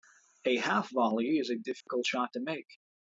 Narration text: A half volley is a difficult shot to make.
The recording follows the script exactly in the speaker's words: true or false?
true